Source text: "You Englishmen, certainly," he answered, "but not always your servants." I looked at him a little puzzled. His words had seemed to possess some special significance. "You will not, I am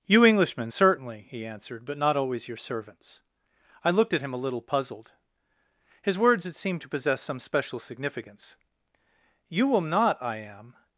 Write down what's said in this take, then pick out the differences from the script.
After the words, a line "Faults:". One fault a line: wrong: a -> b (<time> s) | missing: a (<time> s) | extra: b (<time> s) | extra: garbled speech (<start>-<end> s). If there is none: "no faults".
"You Englishmen, certainly," he answered, "but not always your servants." I looked at him a little puzzled. His words had seemed to possess some special significance. "You will not, I am
Faults:
no faults